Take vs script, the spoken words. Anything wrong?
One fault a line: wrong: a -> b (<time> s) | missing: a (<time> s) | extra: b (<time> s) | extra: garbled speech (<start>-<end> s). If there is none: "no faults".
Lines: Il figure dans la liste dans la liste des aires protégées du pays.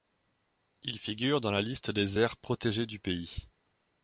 missing: dans la liste (1.9 s)